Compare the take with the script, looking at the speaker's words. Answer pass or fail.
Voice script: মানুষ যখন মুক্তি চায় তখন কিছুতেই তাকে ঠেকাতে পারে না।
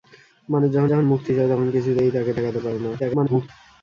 fail